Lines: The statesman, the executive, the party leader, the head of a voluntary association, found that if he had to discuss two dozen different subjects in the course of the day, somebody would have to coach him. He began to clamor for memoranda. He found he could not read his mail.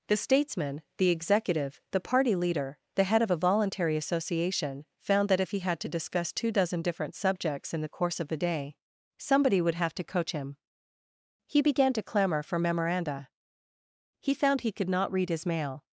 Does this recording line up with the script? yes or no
yes